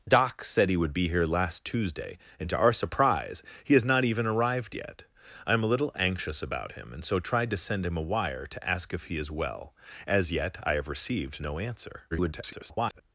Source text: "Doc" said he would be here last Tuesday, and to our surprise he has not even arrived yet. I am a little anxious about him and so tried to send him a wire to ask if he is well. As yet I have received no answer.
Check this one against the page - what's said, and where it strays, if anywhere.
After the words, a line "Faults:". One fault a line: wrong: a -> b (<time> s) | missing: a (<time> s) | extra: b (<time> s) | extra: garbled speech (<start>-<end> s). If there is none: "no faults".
"Doc" said he would be here last Tuesday, and to our surprise he has not even arrived yet. I am a little anxious about him and so tried to send him a wire to ask if he is well. As yet I have received no answer. [garbled]
Faults:
extra: garbled speech (12.1-13.0 s)